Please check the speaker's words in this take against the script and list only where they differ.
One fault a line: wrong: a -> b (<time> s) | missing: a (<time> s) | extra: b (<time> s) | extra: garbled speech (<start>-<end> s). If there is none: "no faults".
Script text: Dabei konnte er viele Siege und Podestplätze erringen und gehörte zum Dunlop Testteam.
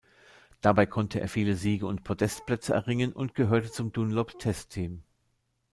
no faults